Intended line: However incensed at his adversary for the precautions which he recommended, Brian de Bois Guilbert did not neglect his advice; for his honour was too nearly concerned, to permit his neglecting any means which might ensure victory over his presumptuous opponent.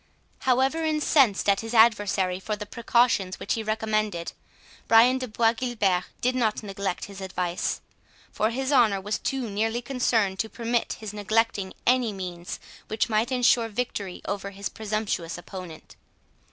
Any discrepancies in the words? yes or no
no